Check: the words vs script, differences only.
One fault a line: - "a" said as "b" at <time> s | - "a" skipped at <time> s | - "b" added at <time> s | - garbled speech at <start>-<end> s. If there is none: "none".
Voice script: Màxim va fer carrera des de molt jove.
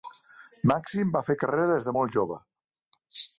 none